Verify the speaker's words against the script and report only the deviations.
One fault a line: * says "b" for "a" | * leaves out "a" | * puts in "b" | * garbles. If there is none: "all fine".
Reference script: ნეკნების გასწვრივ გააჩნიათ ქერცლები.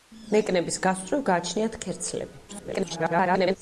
* garbles